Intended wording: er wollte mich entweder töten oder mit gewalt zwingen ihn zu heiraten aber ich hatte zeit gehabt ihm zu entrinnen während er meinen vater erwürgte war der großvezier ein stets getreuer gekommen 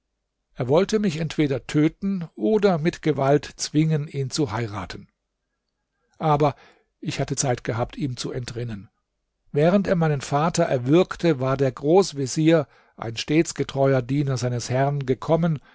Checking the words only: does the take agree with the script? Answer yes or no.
no